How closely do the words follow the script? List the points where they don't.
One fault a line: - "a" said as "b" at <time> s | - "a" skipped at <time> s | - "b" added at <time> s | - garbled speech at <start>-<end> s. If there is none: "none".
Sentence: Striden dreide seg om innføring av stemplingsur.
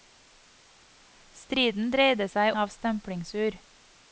- "om innføring" skipped at 2.6 s